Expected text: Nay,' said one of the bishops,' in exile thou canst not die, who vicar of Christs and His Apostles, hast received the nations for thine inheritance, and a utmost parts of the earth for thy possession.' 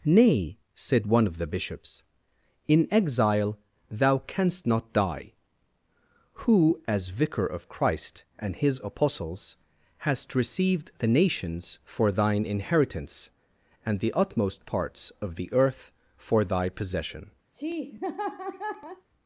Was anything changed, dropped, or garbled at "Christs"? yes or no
yes